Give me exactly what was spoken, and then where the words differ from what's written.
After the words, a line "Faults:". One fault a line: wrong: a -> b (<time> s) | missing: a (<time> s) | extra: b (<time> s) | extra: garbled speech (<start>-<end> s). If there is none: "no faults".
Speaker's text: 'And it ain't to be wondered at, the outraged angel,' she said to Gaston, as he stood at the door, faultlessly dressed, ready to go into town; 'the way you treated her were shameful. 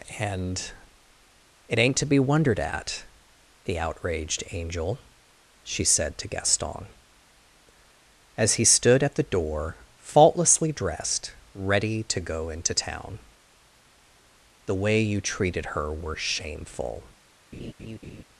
'And it ain't to be wondered at, the outraged angel,' she said to Gaston, as he stood at the door, faultlessly dressed, ready to go into town; 'the way you treated her were shameful.
Faults:
no faults